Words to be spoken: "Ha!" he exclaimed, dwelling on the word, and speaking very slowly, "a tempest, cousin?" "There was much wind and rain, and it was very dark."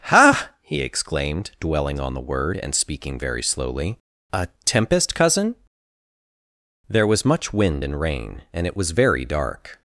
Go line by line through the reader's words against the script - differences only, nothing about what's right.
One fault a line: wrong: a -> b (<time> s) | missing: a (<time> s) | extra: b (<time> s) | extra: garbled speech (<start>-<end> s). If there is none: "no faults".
no faults